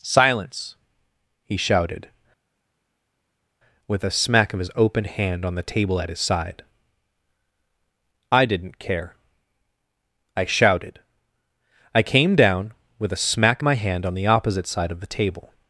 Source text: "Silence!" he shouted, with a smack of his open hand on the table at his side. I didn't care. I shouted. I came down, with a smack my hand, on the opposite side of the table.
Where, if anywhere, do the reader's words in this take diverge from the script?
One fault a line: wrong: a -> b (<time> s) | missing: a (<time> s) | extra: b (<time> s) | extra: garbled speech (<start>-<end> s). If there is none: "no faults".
no faults